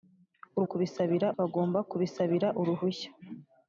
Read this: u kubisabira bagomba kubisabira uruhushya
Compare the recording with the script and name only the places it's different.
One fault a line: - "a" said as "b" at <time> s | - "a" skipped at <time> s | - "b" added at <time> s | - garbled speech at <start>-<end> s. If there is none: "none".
none